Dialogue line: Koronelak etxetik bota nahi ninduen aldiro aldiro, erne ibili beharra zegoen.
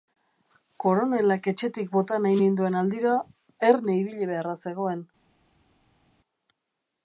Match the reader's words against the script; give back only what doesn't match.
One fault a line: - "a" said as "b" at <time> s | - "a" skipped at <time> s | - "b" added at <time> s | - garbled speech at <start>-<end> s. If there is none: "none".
- "aldiro" skipped at 3.2 s